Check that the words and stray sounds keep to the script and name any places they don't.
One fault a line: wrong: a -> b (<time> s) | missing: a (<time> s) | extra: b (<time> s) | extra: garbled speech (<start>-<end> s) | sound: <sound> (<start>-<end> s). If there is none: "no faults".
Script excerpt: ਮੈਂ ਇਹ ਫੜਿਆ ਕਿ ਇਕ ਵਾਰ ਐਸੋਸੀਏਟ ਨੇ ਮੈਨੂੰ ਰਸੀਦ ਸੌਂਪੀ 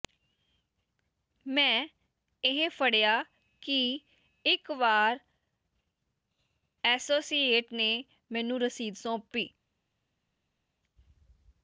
no faults